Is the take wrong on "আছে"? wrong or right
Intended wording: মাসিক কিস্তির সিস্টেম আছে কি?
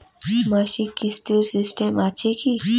right